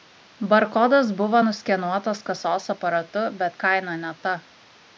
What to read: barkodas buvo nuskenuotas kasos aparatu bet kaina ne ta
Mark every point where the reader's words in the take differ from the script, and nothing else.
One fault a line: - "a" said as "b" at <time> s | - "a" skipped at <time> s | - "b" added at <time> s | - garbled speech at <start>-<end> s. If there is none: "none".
none